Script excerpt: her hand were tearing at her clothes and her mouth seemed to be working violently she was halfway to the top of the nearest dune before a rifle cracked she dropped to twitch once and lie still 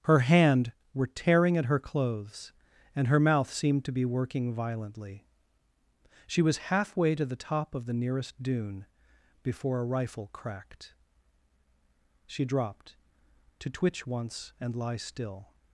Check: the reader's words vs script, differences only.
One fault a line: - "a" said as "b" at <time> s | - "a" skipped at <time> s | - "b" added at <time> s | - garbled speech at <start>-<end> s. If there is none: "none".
none